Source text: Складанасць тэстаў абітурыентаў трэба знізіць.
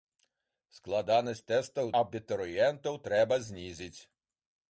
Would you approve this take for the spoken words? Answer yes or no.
yes